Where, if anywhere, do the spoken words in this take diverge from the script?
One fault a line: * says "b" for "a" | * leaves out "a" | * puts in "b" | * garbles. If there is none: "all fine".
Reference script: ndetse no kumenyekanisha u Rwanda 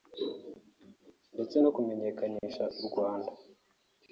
all fine